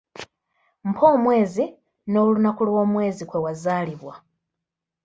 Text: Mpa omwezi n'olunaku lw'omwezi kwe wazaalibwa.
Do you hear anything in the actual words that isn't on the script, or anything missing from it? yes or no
no